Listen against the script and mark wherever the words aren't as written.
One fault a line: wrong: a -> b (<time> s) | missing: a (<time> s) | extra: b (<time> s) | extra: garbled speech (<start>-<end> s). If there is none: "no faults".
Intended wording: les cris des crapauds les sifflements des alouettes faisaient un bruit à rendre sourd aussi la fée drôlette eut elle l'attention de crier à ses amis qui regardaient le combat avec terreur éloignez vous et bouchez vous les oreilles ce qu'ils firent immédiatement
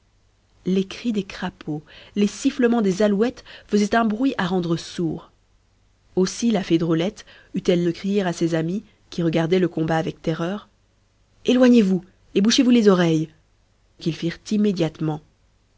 missing: l'attention (7.8 s)
missing: ce (13.3 s)